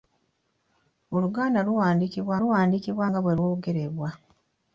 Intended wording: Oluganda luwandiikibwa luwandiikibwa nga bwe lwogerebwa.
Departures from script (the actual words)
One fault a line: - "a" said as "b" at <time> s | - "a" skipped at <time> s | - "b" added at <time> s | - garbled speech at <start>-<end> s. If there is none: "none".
none